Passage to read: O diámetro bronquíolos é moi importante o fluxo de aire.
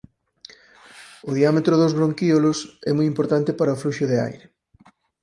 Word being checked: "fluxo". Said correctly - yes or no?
yes